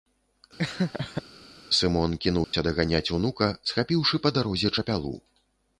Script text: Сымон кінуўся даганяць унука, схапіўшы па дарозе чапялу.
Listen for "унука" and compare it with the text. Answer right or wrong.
right